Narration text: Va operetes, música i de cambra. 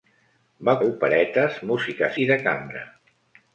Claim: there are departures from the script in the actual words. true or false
false